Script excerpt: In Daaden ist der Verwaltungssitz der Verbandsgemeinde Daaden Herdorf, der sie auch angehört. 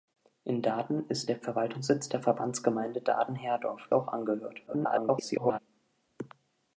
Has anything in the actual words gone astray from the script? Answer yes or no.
yes